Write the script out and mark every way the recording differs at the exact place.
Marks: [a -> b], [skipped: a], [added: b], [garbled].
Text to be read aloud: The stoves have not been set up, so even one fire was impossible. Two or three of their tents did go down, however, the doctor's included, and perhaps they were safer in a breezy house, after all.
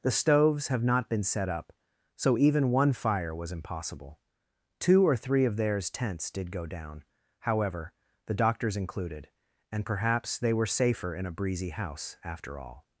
The stoves have not been set up, so even one fire was impossible. Two or three of [their -> theirs] tents did go down, however, the doctor's included, and perhaps they were safer in a breezy house, after all.